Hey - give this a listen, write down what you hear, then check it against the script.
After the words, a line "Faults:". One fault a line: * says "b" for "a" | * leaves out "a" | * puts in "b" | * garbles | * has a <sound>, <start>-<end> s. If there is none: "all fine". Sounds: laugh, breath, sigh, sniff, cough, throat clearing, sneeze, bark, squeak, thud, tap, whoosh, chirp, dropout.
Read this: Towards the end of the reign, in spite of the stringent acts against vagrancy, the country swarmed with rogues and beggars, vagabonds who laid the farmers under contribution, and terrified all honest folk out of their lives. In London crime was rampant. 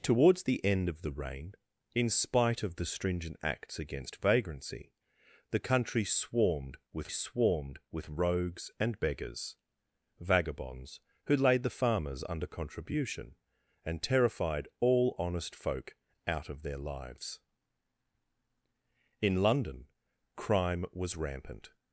Towards the end of the reign, in spite of the stringent acts against vagrancy, the country swarmed with swarmed with rogues and beggars, vagabonds who laid the farmers under contribution, and terrified all honest folk out of their lives. In London crime was rampant.
Faults:
* puts in "swarmed with"